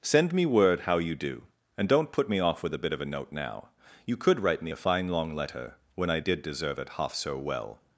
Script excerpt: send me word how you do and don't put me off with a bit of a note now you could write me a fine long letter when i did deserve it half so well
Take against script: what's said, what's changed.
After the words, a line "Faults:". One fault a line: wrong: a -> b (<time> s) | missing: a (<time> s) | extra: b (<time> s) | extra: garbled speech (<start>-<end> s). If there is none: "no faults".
send me word how you do and don't put me off with a bit of a note now you could write me a fine long letter when i did deserve it half so well
Faults:
no faults